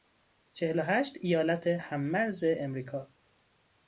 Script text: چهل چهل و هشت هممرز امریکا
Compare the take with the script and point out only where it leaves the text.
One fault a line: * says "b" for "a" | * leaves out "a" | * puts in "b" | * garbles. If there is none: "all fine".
* leaves out "چهل"
* puts in "ایالت"